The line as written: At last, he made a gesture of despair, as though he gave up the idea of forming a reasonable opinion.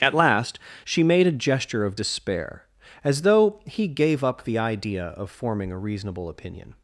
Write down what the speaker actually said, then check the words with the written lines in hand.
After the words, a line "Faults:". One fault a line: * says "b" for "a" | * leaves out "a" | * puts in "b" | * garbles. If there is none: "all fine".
At last, she made a gesture of despair, as though he gave up the idea of forming a reasonable opinion.
Faults:
* says "she" for "he"